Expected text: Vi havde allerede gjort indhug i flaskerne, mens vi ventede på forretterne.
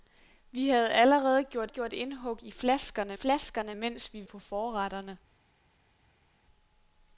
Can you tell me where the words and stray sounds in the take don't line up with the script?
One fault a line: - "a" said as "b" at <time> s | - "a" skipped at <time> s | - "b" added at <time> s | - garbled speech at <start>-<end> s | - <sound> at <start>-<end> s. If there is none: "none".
- "gjort" added at 1.7 s
- "flaskerne" added at 3.1 s
- "ventede" skipped at 4.3 s